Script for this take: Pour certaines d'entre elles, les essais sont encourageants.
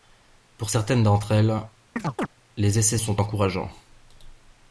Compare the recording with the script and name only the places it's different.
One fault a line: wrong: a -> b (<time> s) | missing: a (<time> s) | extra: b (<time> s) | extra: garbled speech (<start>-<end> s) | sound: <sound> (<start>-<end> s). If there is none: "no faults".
sound: chirp (2.0-2.3 s)